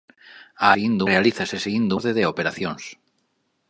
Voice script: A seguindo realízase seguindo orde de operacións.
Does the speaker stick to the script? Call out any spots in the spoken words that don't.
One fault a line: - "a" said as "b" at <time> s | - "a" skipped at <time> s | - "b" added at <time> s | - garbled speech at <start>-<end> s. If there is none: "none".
none